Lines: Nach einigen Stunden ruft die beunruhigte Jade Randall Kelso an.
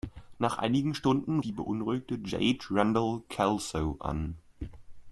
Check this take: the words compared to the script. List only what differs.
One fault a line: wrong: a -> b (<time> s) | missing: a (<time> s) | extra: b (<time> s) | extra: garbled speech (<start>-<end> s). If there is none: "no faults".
missing: ruft (1.4 s)